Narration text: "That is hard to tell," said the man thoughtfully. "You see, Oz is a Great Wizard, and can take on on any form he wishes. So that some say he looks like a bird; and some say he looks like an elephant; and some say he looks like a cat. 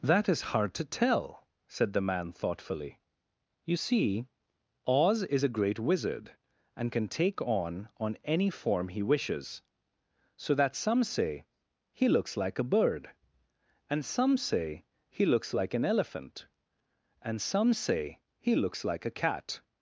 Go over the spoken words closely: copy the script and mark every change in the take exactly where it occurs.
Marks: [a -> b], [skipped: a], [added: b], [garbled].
"That is hard to tell," said the man thoughtfully. "You see, Oz is a Great Wizard, and can take on on any form he wishes. So that some say he looks like a bird; and some say he looks like an elephant; and some say he looks like a cat.